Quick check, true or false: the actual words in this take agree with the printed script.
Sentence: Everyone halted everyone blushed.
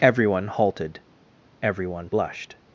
true